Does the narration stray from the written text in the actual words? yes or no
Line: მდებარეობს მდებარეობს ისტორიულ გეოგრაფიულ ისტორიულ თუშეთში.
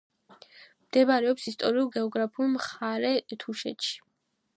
yes